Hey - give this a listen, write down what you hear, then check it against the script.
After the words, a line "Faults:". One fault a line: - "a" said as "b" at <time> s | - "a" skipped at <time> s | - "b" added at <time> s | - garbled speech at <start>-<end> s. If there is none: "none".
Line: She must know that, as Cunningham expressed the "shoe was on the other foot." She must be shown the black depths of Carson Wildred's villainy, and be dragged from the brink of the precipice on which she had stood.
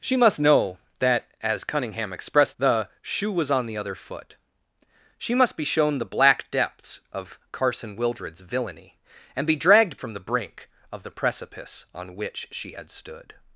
She must know that, as Cunningham expressed the "shoe was on the other foot." She must be shown the black depths of Carson Wildred's villainy, and be dragged from the brink of the precipice on which she had stood.
Faults:
none